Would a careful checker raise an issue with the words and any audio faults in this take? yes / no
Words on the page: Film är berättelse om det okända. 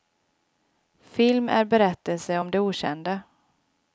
no